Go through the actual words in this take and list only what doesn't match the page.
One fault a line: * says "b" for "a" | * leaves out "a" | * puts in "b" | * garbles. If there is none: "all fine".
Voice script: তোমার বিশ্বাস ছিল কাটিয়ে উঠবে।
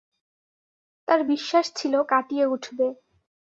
* says "তার" for "তোমার"